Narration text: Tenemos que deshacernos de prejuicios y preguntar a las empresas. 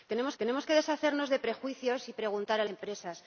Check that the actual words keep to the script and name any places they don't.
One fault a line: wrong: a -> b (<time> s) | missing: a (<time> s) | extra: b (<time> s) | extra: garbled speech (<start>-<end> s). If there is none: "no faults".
extra: tenemos (0.4 s)
missing: las (2.6 s)